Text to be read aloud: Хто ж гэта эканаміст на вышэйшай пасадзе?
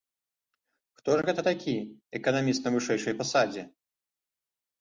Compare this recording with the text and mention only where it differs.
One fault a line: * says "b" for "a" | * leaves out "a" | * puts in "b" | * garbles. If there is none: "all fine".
* puts in "такі"